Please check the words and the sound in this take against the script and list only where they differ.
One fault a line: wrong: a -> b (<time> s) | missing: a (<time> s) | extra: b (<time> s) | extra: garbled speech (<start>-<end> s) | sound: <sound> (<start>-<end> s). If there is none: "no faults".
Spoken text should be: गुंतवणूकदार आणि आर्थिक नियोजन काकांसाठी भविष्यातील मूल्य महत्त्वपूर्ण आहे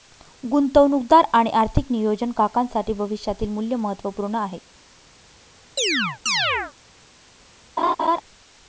sound: chirp (5.8-6.7 s)
sound: laugh (7.8-8.2 s)